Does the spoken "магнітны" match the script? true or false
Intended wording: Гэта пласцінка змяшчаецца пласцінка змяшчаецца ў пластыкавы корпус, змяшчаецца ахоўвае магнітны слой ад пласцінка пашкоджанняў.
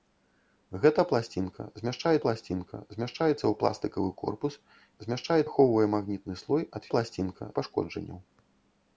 true